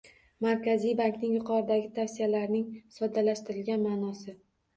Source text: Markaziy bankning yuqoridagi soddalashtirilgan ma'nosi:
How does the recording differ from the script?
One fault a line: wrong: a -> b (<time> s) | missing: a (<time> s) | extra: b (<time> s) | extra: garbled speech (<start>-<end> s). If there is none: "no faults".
extra: tavsiyalarining (2.0 s)